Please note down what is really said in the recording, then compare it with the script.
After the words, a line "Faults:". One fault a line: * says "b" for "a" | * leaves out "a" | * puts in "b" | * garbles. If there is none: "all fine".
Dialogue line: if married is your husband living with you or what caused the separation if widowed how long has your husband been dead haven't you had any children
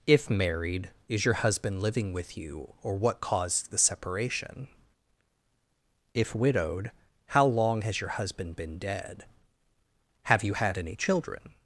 if married is your husband living with you or what caused the separation if widowed how long has your husband been dead have you had any children
Faults:
* says "have" for "haven't"